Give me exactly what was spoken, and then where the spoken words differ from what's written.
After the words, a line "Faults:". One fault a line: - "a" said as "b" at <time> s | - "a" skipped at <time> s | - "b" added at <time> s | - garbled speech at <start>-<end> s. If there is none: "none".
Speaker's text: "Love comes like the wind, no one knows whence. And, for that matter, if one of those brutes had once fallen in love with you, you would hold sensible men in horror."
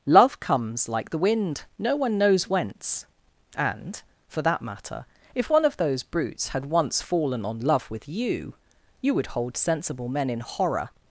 "Love comes like the wind, no one knows whence. And, for that matter, if one of those brutes had once fallen on love with you, you would hold sensible men in horror."
Faults:
- "in" said as "on" at 7.5 s